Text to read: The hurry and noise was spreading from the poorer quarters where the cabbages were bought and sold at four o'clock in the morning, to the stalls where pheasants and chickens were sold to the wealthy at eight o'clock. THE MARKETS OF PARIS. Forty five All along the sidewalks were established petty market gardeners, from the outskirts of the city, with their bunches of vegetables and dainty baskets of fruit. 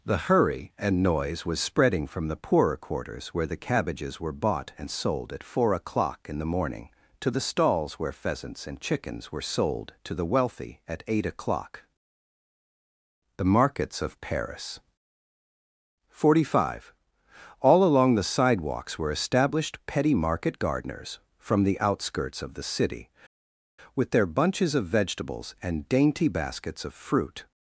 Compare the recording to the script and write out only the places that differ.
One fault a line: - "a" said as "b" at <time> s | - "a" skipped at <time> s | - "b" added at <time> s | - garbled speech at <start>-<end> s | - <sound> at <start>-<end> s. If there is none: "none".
none